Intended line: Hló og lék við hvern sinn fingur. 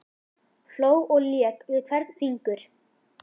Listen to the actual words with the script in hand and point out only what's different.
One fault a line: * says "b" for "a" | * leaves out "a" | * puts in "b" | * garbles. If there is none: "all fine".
* leaves out "sinn"